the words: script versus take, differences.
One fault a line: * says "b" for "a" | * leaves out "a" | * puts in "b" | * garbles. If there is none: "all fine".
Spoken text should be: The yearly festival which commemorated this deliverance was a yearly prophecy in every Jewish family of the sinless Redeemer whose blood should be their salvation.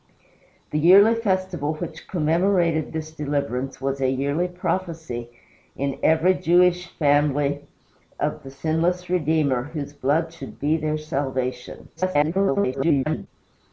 * garbles